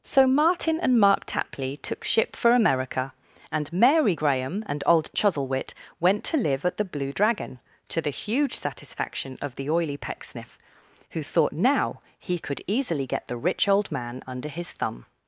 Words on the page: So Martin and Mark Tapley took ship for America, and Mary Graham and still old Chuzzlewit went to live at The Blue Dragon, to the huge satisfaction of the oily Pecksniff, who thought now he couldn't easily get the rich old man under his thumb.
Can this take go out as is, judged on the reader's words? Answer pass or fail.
fail